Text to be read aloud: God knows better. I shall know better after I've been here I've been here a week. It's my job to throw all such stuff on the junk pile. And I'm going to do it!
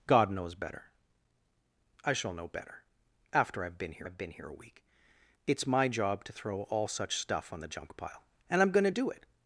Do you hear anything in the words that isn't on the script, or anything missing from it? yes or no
no